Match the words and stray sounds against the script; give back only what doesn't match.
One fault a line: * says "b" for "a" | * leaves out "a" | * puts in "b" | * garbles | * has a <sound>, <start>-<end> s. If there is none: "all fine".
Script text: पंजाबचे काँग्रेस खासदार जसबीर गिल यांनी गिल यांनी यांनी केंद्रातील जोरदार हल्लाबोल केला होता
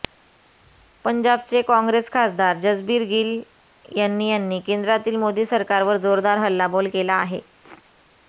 * says "यांनी केंद्रातील मोदी सरकारवर" for "गिल यांनी यांनी केंद्रातील"
* says "आहे" for "होता"